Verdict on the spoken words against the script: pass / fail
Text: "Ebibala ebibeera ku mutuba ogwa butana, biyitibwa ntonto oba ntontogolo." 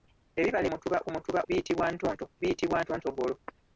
fail